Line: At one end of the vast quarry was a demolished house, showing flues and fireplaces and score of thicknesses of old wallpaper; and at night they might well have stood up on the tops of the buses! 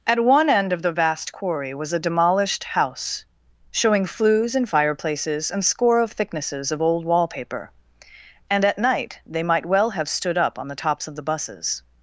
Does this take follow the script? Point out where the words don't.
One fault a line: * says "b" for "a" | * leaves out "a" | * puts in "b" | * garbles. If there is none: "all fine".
all fine